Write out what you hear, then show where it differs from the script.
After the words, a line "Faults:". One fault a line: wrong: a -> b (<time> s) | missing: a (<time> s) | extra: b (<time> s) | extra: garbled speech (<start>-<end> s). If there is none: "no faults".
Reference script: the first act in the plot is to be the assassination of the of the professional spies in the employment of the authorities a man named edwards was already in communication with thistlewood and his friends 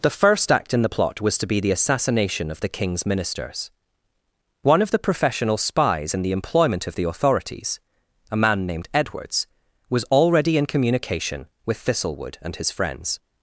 the first act in the plot was to be the assassination of the king's ministers one of the professional spies in the employment of the authorities a man named edwards was already in communication with thistlewood and his friends
Faults:
wrong: is -> was (1.2 s)
extra: king's ministers one (2.7 s)